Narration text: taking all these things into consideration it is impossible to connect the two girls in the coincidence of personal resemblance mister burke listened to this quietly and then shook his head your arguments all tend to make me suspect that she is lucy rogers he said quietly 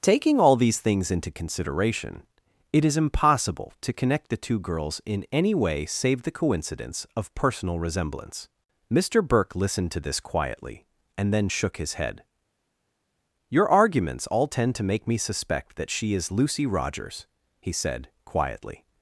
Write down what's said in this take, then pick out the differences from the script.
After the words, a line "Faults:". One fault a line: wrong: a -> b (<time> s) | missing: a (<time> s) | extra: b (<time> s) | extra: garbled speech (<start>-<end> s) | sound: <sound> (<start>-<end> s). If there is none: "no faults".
taking all these things into consideration it is impossible to connect the two girls in any way save the coincidence of personal resemblance mister burke listened to this quietly and then shook his head your arguments all tend to make me suspect that she is lucy rogers he said quietly
Faults:
extra: any way save (5.3 s)